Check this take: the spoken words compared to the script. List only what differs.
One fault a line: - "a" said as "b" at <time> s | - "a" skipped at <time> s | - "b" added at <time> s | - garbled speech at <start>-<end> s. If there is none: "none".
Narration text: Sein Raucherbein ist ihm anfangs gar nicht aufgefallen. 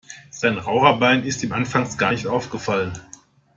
none